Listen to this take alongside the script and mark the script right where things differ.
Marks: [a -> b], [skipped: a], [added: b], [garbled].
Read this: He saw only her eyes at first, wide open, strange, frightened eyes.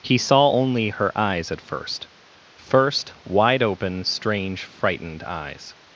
He saw only her eyes at first, [added: first] wide open, strange, frightened eyes.